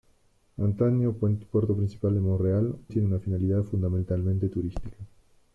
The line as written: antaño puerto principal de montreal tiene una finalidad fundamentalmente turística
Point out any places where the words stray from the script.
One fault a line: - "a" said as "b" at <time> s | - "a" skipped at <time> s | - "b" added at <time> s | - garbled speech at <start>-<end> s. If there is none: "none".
none